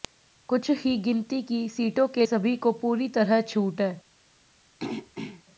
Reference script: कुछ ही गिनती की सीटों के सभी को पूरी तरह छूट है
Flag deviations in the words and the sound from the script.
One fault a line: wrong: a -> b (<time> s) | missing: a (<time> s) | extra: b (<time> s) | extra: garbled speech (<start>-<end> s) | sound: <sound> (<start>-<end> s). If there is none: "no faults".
sound: throat clearing (4.8-5.4 s)